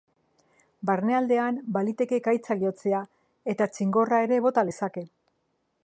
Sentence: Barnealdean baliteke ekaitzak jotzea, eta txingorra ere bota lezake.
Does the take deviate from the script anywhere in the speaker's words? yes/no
no